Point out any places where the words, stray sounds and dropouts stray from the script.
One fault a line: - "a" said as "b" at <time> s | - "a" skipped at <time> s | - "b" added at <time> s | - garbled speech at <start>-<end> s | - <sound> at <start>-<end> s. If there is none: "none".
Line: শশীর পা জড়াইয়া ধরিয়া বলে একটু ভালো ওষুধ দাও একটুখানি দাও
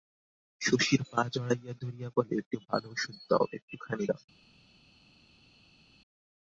none